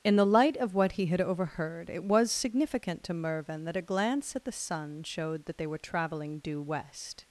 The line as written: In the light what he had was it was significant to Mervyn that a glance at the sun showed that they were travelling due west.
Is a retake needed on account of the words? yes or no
yes